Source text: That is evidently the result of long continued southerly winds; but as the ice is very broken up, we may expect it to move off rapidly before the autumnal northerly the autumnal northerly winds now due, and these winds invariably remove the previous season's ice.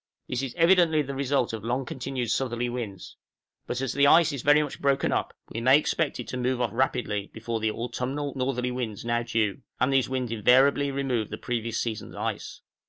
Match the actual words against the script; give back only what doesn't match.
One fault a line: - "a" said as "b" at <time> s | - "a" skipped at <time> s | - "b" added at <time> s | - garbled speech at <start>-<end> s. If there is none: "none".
- "That" said as "This" at 0.3 s
- "much" added at 4.6 s
- "the autumnal northerly" skipped at 8.7 s